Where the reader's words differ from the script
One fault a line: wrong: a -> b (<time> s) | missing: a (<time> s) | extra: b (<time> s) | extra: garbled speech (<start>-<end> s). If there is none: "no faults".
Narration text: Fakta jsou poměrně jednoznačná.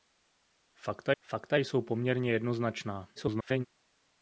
extra: fakta (1.2 s)
extra: garbled speech (3.2-3.7 s)